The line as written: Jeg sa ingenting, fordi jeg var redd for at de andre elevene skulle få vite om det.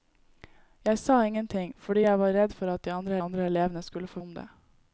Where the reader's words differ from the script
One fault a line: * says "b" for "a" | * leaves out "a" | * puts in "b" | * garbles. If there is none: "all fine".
* puts in "andre"
* leaves out "vite"